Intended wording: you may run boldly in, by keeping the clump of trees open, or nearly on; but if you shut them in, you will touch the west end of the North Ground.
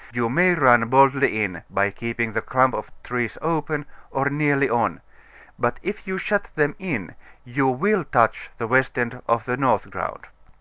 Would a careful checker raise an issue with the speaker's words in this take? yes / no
no